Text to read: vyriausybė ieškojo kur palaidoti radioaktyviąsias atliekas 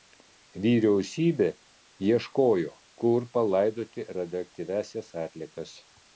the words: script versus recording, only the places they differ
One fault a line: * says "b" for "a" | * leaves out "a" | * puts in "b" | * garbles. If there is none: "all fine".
all fine